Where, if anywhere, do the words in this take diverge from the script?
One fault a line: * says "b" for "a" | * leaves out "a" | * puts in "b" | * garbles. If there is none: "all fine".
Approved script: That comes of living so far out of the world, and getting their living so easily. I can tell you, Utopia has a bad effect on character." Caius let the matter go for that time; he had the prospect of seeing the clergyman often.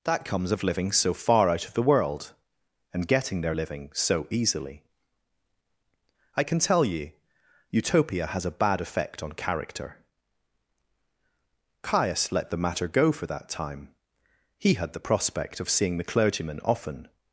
all fine